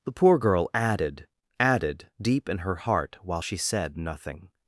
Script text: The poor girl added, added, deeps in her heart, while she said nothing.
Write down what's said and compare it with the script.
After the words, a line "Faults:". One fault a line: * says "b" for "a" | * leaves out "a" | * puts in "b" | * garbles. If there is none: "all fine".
The poor girl added, added, deep in her heart, while she said nothing.
Faults:
* says "deep" for "deeps"